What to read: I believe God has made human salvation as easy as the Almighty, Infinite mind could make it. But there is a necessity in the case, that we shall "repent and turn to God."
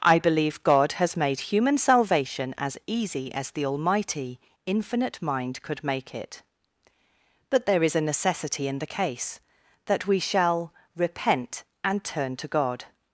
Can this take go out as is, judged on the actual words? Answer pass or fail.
pass